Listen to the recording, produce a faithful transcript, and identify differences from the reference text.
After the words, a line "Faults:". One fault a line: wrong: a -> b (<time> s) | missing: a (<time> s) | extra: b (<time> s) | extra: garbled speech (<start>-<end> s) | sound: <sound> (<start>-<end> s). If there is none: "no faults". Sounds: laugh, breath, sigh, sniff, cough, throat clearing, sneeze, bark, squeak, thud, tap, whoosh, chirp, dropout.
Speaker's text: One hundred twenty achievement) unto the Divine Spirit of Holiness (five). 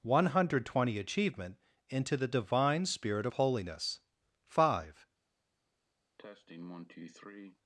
One hundred twenty achievement) into the Divine Spirit of Holiness (five).
Faults:
wrong: unto -> into (1.9 s)
sound: cough (6.2-7.6 s)